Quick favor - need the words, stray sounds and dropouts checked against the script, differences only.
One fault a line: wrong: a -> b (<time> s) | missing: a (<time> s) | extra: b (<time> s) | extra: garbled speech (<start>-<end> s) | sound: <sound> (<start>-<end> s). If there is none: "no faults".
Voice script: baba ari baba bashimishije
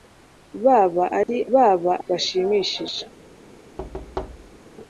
sound: dropout (1.2-1.3 s)
sound: thud (3.8-4.6 s)